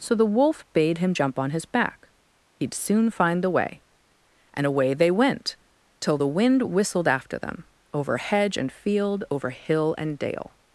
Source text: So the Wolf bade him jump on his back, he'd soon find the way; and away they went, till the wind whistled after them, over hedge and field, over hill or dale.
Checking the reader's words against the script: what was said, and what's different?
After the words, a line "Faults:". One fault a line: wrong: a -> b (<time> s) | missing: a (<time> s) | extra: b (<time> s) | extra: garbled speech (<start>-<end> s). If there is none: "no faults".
So the Wolf bade him jump on his back, he'd soon find the way; and away they went, till the wind whistled after them, over hedge and field, over hill and dale.
Faults:
wrong: or -> and (10.0 s)